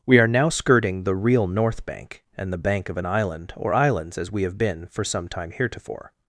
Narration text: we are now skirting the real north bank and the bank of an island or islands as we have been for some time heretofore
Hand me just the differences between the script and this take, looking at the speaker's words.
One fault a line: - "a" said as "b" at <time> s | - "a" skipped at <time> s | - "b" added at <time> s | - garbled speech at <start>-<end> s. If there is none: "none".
none